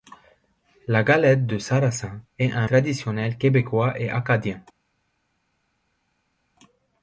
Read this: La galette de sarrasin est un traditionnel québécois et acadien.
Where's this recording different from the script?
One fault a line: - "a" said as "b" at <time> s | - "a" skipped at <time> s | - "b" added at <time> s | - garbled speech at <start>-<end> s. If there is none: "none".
none